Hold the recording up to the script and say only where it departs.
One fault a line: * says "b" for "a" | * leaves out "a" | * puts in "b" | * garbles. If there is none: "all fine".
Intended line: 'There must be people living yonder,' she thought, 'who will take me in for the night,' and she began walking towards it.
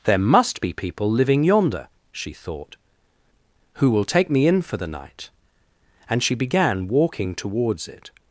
all fine